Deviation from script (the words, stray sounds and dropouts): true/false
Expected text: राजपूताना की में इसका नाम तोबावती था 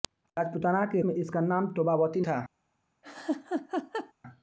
true